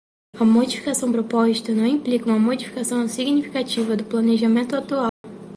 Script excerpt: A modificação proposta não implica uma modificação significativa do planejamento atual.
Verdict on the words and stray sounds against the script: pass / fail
fail